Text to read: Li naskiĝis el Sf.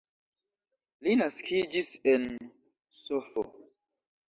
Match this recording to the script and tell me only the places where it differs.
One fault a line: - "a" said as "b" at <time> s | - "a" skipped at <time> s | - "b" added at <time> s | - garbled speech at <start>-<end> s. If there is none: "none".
- "el" said as "en" at 2.1 s